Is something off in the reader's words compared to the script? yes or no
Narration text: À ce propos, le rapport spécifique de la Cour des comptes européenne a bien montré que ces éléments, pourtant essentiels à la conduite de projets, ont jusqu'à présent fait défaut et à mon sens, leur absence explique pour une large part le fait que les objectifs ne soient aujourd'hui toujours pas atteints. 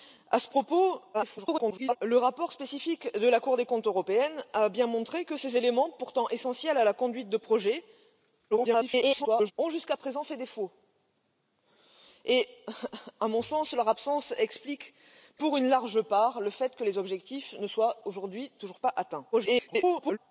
yes